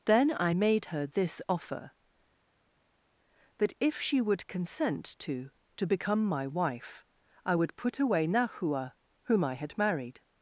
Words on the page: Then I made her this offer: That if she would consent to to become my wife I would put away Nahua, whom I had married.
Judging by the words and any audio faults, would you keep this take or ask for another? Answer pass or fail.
pass